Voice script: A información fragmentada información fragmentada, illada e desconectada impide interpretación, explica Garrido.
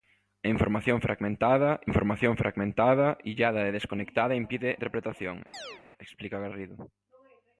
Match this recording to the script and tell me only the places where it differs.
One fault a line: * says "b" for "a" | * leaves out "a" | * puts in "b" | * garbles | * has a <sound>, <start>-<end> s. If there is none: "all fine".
* has a chirp, 5.5-5.8 s